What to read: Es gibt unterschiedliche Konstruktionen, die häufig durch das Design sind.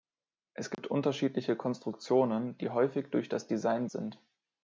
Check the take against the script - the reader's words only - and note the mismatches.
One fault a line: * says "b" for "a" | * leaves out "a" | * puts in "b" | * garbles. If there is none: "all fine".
all fine